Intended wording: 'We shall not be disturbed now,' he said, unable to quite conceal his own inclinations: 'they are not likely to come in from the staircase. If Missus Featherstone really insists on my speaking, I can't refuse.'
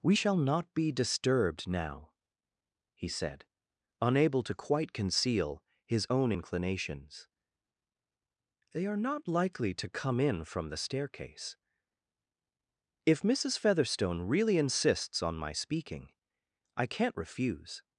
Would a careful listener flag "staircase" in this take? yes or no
no